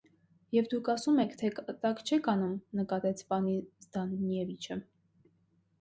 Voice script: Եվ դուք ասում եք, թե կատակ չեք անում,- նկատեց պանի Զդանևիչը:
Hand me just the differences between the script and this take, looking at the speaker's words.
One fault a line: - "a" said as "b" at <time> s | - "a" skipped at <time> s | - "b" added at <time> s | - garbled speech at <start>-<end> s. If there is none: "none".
none